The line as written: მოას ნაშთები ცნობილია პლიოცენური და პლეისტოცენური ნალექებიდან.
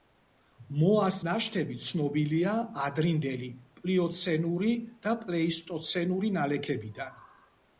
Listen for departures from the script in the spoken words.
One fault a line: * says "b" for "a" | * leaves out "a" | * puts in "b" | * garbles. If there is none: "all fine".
* puts in "ადრინდელი"